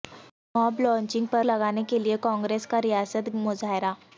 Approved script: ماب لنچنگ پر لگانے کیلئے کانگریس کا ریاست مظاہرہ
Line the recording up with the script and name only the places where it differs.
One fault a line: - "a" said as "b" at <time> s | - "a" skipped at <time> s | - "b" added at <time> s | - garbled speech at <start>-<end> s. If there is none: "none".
none